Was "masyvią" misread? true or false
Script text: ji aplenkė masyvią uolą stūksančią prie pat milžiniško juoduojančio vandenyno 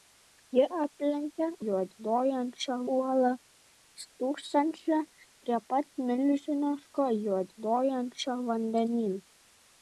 true